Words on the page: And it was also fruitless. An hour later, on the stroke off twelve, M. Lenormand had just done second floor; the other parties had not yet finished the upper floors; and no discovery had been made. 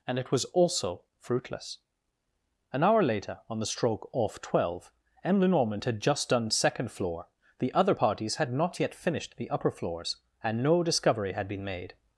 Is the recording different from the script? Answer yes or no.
no